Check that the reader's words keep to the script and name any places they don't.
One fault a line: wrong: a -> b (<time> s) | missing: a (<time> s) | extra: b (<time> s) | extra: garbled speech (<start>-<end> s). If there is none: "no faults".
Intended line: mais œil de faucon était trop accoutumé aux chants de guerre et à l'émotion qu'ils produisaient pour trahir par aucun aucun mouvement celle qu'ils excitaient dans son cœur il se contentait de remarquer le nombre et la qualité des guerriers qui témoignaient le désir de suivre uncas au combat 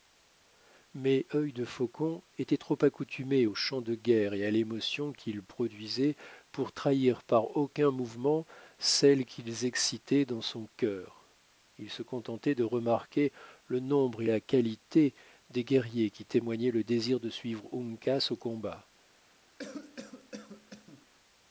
missing: aucun (7.9 s)